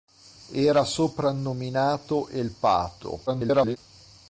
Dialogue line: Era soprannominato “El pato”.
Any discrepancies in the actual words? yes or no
yes